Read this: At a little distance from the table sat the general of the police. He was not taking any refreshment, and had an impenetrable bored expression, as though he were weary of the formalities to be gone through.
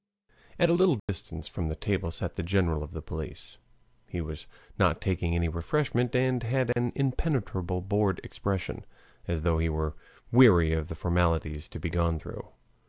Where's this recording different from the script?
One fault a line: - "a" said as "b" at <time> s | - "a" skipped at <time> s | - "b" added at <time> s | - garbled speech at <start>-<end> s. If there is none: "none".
none